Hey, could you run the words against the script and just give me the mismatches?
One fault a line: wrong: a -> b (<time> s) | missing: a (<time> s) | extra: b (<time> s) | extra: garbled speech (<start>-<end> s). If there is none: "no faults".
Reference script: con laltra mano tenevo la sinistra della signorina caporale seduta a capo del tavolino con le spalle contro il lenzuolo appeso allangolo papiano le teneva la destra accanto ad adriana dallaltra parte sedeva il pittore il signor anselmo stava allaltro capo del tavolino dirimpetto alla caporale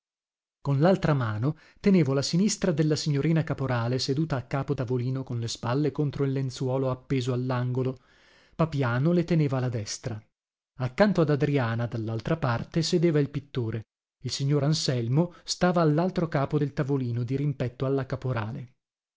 missing: del (4.7 s)